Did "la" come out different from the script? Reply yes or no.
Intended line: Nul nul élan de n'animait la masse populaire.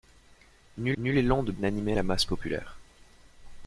no